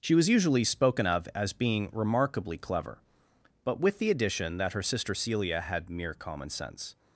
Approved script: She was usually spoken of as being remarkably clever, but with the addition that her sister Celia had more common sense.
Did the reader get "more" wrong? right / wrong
wrong